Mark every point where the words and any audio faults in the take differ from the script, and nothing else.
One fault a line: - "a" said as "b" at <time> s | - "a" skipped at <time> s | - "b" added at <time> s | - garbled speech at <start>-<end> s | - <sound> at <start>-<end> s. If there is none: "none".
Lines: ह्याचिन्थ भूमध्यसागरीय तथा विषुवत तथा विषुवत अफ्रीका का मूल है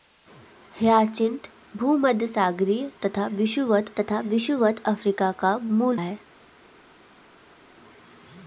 none